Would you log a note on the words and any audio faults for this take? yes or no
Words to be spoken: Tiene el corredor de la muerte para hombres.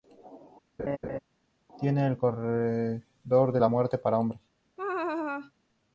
yes